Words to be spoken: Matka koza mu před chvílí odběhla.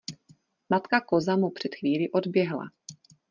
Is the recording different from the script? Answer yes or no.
no